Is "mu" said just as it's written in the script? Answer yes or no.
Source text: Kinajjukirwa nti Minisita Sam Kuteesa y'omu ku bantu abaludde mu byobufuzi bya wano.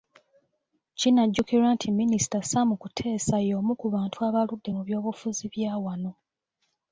yes